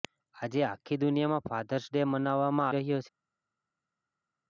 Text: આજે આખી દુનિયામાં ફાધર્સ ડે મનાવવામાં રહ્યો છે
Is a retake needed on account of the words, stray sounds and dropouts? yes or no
no